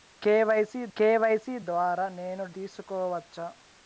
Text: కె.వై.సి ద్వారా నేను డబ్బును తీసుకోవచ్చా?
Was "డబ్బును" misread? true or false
true